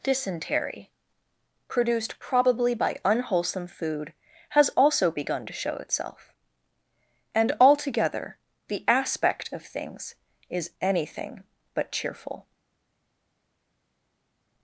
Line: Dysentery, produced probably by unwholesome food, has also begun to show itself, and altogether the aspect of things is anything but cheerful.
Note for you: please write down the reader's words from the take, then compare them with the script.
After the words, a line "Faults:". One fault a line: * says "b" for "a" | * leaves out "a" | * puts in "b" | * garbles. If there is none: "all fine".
Dysentery, produced probably by unwholesome food, has also begun to show itself, and altogether the aspect of things is anything but cheerful.
Faults:
all fine